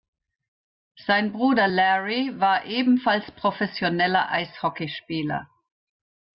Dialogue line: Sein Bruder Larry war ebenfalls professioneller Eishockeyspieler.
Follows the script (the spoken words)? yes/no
yes